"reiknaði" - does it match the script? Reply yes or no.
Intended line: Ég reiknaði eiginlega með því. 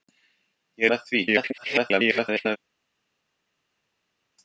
no